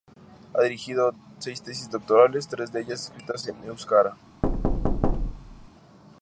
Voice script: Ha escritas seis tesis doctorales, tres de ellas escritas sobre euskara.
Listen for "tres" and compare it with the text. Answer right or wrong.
right